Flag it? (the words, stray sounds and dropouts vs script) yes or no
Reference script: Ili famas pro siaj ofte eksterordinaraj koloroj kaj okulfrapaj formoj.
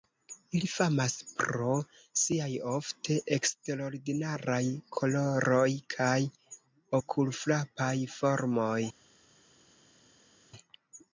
no